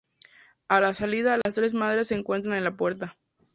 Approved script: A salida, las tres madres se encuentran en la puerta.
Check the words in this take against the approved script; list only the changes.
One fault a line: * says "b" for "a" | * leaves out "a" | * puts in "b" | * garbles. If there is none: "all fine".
* puts in "la"